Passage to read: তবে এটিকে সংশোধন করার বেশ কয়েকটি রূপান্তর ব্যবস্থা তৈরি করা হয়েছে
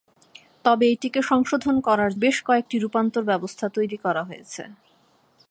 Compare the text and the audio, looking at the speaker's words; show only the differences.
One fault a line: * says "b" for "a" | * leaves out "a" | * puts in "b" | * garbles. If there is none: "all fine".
all fine